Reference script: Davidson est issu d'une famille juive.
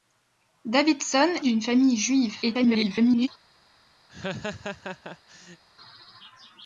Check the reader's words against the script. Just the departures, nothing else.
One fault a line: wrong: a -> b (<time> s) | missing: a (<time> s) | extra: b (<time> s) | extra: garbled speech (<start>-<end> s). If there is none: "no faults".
missing: est issu (1.3 s)
extra: garbled speech (2.4-3.3 s)